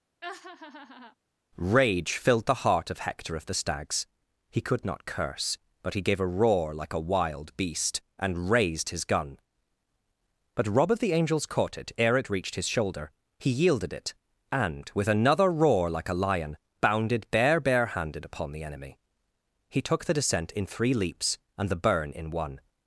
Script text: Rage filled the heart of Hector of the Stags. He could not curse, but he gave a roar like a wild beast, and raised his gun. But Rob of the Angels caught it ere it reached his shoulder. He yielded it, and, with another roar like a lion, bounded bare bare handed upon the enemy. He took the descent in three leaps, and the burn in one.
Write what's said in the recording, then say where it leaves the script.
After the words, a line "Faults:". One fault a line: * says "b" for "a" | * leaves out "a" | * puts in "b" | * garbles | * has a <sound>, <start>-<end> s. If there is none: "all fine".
Rage filled the heart of Hector of the Stags. He could not curse, but he gave a roar like a wild beast, and raised his gun. But Rob of the Angels caught it ere it reached his shoulder. He yielded it, and, with another roar like a lion, bounded bare bare handed upon the enemy. He took the descent in three leaps, and the burn in one.
Faults:
* has a laugh, 0.2-1.2 s